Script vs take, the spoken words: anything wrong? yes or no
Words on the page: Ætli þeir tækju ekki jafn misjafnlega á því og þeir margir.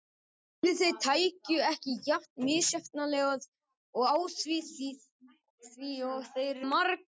no